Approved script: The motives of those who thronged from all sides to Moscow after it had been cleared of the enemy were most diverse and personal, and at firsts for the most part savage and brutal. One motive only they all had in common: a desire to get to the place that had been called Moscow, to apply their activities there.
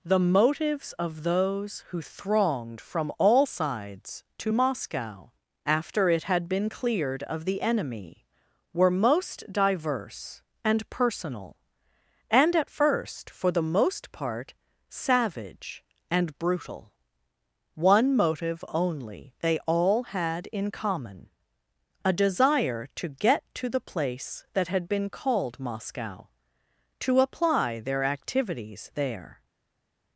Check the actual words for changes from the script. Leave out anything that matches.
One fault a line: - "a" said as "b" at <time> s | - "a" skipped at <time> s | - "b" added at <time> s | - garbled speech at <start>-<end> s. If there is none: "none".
- "firsts" said as "first" at 12.7 s